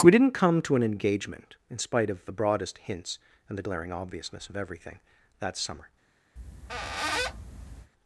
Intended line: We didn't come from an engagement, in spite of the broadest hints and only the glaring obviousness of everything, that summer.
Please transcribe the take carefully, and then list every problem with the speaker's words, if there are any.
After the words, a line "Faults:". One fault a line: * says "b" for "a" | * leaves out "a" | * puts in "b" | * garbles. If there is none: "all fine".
We didn't come to an engagement, in spite of the broadest hints and the glaring obviousness of everything, that summer.
Faults:
* says "to" for "from"
* leaves out "only"